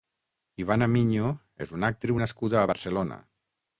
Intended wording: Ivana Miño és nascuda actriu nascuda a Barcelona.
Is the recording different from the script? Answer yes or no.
yes